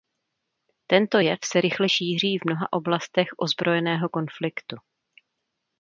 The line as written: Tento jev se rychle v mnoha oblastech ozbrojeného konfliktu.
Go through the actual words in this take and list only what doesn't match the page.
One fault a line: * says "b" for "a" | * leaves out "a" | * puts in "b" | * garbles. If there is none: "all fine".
* puts in "šíří"